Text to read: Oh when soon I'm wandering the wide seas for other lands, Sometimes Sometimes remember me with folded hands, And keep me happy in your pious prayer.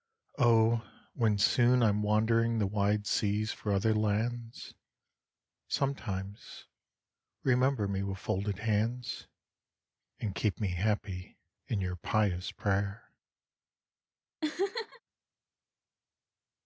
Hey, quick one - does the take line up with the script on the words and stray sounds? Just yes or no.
no